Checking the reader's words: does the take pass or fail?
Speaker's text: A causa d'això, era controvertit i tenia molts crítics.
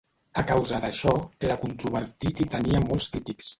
pass